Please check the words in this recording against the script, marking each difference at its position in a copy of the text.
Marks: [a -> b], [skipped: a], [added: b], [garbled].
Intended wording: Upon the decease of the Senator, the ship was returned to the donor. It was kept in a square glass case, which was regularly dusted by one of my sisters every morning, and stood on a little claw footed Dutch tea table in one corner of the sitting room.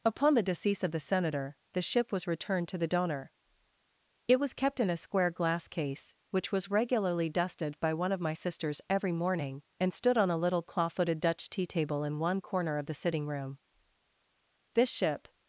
Upon the decease of the Senator, the ship was returned to the donor. It was kept in a square glass case, which was regularly dusted by one of my sisters every morning, and stood on a little claw footed Dutch tea table in one corner of the sitting room. [added: This ship]